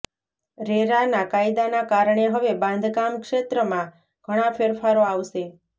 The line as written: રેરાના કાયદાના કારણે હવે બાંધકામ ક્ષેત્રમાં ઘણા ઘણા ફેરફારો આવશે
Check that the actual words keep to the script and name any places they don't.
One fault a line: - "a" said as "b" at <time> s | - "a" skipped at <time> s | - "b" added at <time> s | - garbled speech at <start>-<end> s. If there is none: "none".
- "ઘણા" skipped at 4.5 s